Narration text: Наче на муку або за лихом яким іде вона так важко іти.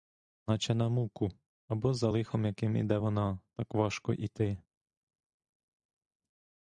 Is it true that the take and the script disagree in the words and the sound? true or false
false